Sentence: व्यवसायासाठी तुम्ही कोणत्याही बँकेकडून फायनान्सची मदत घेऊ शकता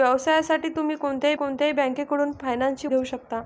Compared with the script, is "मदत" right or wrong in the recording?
wrong